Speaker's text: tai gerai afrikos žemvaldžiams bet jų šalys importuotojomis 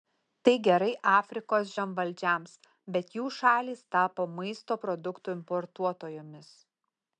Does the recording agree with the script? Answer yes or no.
no